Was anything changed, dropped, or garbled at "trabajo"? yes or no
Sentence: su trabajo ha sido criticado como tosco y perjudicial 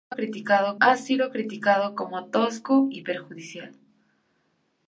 yes